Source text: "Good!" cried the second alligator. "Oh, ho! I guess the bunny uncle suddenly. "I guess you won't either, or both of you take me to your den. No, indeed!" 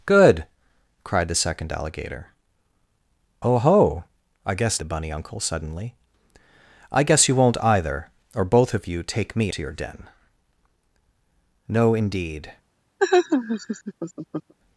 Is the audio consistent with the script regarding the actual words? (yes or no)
yes